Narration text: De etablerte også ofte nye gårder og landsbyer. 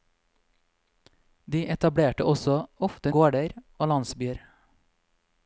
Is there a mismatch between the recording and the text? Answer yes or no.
yes